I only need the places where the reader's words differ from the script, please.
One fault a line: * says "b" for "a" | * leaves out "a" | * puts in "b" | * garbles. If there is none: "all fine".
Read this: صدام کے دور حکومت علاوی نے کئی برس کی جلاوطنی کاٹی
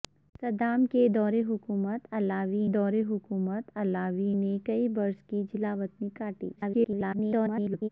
* puts in "دور حکومت علاوی"
* garbles